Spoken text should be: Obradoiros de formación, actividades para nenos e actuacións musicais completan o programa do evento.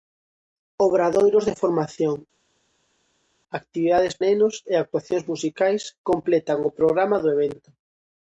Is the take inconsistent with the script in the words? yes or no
yes